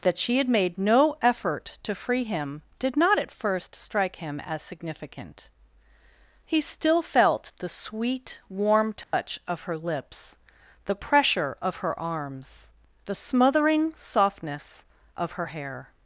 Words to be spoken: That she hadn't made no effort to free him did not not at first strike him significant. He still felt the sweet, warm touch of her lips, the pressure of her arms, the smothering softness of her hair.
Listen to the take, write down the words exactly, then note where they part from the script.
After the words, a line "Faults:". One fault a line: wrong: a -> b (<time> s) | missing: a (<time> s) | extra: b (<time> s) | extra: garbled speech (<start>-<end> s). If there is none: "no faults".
That she had made no effort to free him did not at first strike him as significant. He still felt the sweet, warm touch of her lips, the pressure of her arms, the smothering softness of her hair.
Faults:
wrong: hadn't -> had (0.4 s)
missing: not (3.2 s)
extra: as (4.4 s)